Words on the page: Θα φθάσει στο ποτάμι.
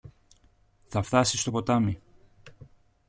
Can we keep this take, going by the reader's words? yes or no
yes